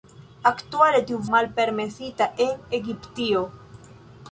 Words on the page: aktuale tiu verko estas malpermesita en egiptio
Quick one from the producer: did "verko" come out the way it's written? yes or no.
no